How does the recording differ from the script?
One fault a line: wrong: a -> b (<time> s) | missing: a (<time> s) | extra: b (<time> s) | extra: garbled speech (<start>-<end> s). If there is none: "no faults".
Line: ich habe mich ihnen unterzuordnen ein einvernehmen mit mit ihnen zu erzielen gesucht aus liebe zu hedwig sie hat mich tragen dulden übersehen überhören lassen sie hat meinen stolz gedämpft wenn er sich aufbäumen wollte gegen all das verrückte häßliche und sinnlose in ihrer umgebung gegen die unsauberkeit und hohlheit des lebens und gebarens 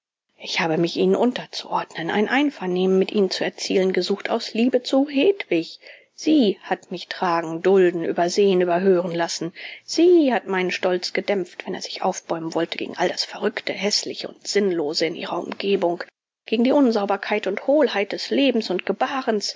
missing: mit (3.1 s)